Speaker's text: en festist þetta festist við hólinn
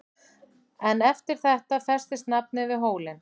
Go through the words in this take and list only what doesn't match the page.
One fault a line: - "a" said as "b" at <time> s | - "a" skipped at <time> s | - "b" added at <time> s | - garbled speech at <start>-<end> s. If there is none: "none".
- "festist" said as "eftir" at 1.1 s
- "nafnið" added at 2.4 s